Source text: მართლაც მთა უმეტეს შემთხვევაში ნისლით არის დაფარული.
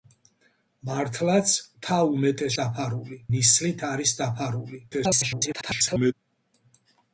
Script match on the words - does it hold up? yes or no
no